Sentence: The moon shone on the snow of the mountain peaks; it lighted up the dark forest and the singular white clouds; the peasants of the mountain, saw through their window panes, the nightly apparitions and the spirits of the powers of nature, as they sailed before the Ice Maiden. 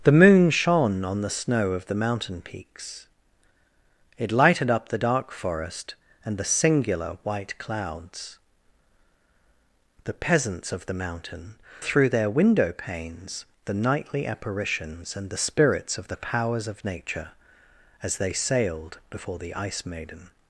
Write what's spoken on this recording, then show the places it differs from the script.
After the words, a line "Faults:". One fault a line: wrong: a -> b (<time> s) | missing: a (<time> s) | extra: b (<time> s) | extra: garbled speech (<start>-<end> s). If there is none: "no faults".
The moon shone on the snow of the mountain peaks; it lighted up the dark forest and the singular white clouds; the peasants of the mountain, through their window panes, the nightly apparitions and the spirits of the powers of nature, as they sailed before the Ice Maiden.
Faults:
missing: saw (11.5 s)